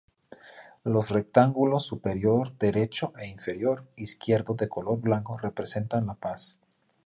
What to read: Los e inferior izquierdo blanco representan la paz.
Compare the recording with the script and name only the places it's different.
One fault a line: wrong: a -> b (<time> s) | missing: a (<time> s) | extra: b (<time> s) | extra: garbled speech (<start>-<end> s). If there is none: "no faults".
extra: rectángulos superior derecho (1.1 s)
extra: de color (4.5 s)